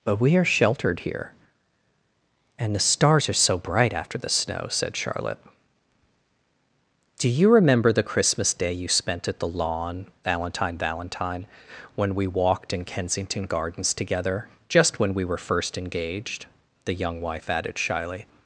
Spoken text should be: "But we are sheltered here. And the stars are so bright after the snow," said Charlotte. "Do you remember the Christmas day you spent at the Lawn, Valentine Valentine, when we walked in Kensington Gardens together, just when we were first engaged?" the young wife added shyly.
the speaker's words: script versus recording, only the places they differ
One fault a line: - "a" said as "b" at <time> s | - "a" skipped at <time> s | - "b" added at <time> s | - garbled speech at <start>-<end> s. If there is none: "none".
none